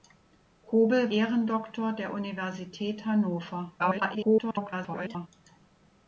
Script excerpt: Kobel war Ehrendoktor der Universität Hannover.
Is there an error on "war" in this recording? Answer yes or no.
yes